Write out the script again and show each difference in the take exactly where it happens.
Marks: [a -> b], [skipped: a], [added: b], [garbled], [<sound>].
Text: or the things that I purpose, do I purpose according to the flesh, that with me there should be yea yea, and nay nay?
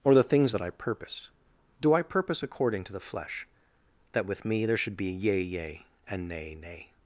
or the things that I purpose, do I purpose according to the flesh, that with me there should be yea yea, and nay nay?